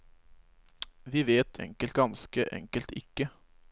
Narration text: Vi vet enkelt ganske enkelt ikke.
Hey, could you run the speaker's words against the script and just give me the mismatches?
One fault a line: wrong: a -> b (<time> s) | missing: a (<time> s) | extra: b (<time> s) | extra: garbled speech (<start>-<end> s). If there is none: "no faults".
no faults